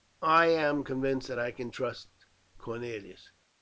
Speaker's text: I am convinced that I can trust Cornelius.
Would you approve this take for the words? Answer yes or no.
yes